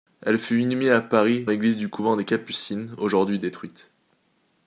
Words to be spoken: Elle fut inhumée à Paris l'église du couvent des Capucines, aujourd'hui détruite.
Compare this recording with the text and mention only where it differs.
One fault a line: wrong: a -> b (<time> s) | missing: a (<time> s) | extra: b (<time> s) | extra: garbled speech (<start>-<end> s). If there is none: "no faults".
no faults